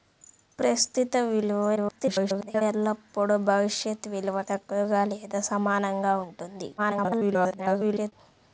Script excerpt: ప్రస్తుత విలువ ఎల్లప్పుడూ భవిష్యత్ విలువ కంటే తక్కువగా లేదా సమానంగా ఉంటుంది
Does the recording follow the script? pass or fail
fail